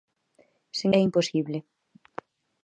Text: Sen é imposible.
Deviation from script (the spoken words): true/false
false